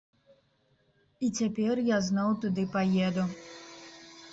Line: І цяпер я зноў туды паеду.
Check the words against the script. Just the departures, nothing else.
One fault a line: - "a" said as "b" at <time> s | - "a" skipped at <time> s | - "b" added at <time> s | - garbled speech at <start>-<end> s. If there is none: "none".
none